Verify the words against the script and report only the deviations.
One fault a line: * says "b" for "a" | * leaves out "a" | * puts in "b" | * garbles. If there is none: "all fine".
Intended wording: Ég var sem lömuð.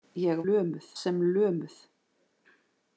* says "lömuð" for "var"